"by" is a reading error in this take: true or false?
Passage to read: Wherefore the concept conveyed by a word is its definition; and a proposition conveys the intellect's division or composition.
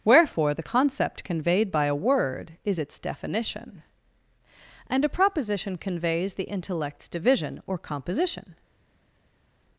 false